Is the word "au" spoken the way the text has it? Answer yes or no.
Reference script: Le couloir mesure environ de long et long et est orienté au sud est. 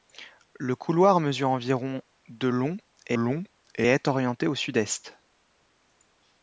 yes